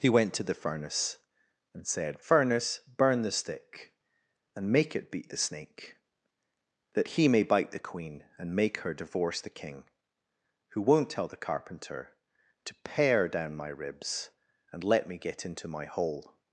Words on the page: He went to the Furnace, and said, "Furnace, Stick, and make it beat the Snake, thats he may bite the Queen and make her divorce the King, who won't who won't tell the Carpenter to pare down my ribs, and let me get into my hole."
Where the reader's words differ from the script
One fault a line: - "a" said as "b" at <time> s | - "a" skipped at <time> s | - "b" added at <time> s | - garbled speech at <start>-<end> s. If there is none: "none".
- "burn the" added at 2.9 s
- "thats" said as "that" at 6.9 s
- "who won't" skipped at 11.1 s